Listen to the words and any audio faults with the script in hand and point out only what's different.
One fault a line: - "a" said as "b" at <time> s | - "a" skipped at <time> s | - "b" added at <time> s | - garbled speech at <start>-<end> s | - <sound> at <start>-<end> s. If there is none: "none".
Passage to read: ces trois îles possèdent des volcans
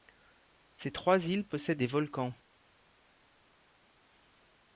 none